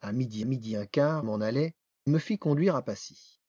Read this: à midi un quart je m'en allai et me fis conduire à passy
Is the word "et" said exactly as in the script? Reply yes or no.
no